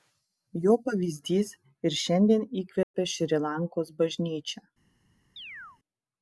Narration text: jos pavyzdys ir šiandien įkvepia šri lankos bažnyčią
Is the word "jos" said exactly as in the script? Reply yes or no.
no